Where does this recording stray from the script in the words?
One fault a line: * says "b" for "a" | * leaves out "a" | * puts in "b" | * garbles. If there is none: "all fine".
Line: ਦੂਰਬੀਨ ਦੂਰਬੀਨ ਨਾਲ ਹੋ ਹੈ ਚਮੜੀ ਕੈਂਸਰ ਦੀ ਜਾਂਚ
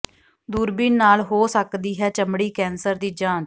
* leaves out "ਦੂਰਬੀਨ"
* puts in "ਸਕਦੀ"